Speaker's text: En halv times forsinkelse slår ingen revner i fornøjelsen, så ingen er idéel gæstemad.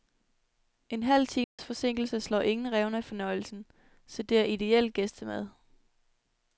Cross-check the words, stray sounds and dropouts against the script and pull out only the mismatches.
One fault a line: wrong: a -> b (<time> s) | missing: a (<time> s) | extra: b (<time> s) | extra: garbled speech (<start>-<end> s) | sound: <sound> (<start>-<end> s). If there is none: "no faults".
sound: dropout (1.4-1.6 s)
wrong: ingen -> det (4.2 s)